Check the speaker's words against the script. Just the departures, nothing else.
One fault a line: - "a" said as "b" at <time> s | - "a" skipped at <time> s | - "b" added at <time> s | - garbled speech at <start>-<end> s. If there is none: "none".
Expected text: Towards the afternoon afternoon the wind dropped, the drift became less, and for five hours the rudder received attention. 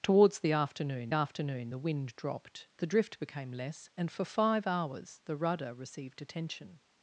none